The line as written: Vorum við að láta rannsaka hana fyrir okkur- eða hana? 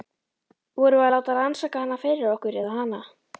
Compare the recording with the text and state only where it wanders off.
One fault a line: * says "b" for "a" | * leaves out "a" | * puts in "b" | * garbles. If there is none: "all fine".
all fine